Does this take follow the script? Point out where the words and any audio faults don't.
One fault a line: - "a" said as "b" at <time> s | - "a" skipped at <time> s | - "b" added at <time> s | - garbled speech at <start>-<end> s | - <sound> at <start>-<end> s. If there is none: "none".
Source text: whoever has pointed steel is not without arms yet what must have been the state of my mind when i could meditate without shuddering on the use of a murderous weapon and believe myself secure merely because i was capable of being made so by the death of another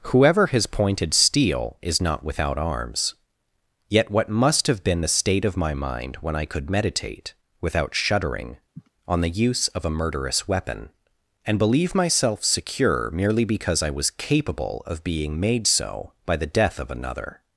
- sniff at 8.7-8.9 s